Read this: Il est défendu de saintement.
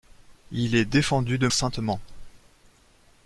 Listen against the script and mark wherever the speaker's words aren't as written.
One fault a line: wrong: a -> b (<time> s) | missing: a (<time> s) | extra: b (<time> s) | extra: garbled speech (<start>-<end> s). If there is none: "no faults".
no faults